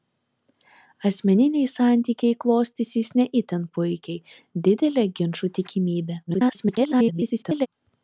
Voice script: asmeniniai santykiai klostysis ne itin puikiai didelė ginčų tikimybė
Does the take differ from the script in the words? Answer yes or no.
yes